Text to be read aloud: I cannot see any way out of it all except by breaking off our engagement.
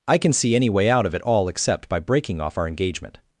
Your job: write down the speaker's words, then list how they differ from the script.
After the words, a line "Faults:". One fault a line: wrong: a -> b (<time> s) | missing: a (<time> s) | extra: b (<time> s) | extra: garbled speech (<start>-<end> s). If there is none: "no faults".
I can see any way out of it all except by breaking off our engagement.
Faults:
wrong: cannot -> can (0.2 s)